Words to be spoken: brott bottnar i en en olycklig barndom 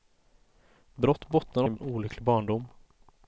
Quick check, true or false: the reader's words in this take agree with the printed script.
true